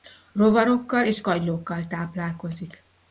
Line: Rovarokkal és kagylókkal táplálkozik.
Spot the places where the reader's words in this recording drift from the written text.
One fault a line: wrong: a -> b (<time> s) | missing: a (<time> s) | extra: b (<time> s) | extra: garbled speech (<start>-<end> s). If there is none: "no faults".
no faults